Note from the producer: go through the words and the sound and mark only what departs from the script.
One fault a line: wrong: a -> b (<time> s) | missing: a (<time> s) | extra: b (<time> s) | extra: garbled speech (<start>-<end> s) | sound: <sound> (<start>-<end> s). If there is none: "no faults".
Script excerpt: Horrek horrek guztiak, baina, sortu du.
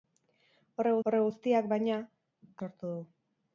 no faults